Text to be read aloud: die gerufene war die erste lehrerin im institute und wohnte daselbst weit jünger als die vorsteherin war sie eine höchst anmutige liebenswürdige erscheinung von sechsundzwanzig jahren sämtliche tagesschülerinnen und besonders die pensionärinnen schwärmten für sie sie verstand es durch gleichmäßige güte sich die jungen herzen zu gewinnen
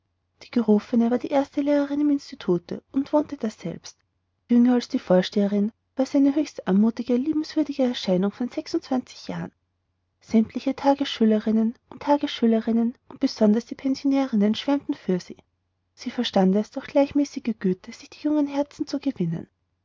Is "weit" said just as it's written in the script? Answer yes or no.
no